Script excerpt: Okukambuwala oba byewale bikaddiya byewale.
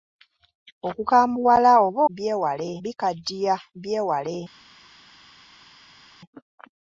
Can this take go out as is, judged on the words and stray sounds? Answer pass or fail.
pass